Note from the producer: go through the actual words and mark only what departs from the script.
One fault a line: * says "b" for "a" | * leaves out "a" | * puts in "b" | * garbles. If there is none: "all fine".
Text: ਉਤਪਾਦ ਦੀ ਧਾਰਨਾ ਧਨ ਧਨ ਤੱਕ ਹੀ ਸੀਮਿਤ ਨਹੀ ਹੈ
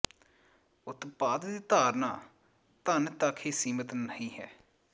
* leaves out "ਧਨ"